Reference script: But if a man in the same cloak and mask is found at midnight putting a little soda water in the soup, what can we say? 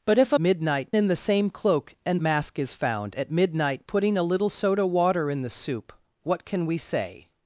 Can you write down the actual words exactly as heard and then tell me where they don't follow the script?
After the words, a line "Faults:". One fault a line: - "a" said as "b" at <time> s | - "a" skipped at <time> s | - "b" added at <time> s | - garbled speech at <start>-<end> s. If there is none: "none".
But if a midnight in the same cloak and mask is found at midnight putting a little soda water in the soup, what can we say?
Faults:
- "man" said as "midnight" at 0.4 s